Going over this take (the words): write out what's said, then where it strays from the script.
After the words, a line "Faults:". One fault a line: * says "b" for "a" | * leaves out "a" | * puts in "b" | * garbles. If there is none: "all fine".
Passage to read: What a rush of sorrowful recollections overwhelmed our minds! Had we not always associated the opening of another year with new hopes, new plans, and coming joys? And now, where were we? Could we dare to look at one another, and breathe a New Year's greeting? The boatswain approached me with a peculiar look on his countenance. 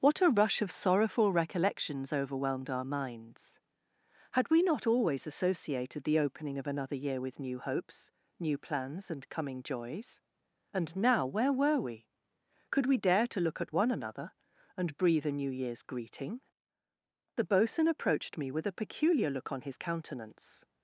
What a rush of sorrowful recollections overwhelmed our minds! Had we not always associated the opening of another year with new hopes, new plans, and coming joys? And now, where were we? Could we dare to look at one another, and breathe a New Year's greeting? The boatswain approached me with a peculiar look on his countenance.
Faults:
all fine